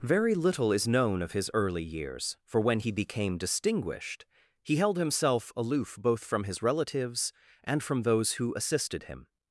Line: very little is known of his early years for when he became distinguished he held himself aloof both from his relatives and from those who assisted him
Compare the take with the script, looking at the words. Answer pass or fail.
pass